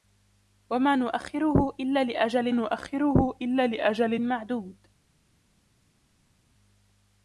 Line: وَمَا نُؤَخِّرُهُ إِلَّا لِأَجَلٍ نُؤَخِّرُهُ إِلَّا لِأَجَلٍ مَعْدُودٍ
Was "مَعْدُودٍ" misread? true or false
false